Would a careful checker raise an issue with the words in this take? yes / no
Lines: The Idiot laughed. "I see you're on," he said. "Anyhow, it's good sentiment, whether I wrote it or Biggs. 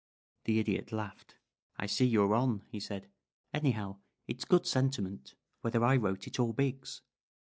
no